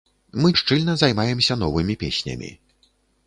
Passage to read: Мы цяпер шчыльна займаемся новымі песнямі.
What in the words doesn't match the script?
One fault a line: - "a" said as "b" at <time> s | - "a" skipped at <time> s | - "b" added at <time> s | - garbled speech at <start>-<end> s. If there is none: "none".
- "цяпер" skipped at 0.5 s